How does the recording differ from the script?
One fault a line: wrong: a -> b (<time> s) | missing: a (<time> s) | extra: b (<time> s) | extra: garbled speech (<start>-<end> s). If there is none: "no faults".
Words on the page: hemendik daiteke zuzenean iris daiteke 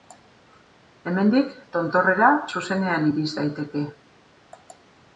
wrong: daiteke -> tontorrera (1.8 s)